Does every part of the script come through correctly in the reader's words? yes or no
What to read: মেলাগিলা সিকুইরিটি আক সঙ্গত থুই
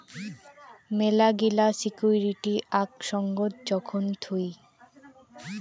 no